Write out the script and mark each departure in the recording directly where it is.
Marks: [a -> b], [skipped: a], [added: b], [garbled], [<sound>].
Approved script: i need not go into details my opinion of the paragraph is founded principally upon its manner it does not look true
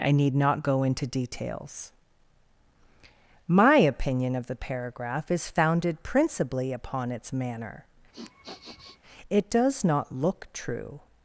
i need not go into details my opinion of the paragraph is founded principally upon its manner [sniff] it does not look true